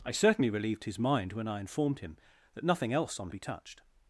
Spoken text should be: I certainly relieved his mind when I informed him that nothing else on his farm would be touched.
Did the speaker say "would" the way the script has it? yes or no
no